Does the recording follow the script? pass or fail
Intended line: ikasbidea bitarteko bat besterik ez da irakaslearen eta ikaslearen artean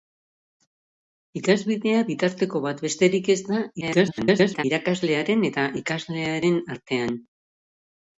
fail